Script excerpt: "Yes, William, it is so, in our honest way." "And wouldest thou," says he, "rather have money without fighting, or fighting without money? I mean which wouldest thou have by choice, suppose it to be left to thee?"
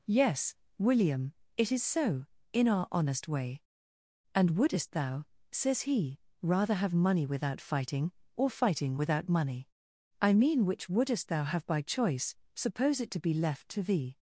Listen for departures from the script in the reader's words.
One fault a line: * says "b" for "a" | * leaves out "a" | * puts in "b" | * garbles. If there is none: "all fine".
all fine